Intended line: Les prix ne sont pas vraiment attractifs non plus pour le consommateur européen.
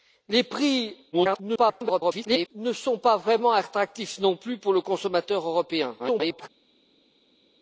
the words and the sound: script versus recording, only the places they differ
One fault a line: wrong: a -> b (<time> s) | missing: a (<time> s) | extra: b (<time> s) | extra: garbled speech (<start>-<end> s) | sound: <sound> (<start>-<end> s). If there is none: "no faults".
extra: garbled speech (1.1-2.5 s)
extra: garbled speech (6.0-6.5 s)